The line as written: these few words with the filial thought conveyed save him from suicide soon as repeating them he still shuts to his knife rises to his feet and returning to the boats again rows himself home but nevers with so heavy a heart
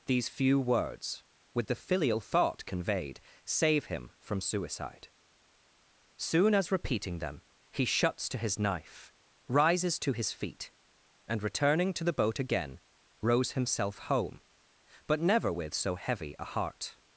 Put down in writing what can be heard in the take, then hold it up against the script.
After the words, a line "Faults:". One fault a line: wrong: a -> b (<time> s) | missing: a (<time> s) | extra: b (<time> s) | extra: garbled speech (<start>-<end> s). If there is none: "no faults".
these few words with the filial thought conveyed save him from suicide soon as repeating them he shuts to his knife rises to his feet and returning to the boat again rows himself home but never with so heavy a heart
Faults:
missing: still (7.9 s)
wrong: boats -> boat (12.1 s)
wrong: nevers -> never (15.2 s)